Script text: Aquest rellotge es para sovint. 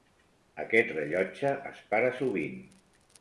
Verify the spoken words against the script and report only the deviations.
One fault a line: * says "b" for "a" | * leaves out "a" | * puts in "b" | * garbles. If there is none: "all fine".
all fine